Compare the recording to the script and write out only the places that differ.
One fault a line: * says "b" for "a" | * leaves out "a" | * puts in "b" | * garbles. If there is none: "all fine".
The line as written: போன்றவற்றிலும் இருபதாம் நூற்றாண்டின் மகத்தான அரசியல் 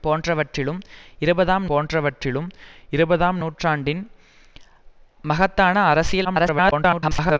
* puts in "போன்றவற்றிலும் இருபதாம்"
* garbles